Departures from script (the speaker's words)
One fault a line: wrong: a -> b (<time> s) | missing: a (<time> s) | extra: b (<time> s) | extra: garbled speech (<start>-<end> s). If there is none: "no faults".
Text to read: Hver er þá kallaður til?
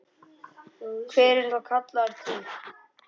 no faults